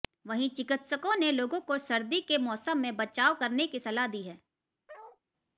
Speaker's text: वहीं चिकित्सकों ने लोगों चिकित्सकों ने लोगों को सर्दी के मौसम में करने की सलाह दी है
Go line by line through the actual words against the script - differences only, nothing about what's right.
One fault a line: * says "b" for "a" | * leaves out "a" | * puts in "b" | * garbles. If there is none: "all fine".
* leaves out "चिकित्सकों ने लोगों"
* puts in "बचाव"